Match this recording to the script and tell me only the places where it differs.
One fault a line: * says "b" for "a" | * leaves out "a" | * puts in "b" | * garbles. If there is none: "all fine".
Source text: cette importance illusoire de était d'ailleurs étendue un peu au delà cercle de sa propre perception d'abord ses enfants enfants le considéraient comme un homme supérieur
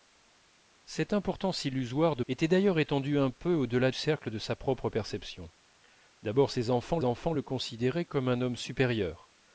all fine